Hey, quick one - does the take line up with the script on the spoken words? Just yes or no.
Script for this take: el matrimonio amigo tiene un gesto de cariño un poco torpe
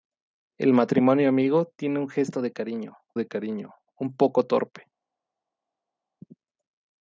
no